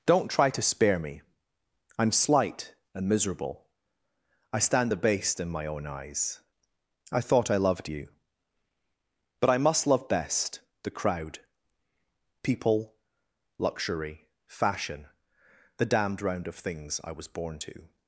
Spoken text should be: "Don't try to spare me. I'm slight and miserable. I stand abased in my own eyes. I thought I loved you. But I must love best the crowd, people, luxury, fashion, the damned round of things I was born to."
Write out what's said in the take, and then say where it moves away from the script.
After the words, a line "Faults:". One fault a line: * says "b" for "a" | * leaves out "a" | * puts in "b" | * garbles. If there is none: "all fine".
"Don't try to spare me. I'm slight and miserable. I stand abased in my own eyes. I thought I loved you. But I must love best the crowd, people, luxury, fashion, the damned round of things I was born to."
Faults:
all fine